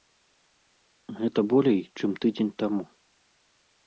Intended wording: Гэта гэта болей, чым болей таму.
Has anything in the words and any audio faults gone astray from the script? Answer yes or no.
yes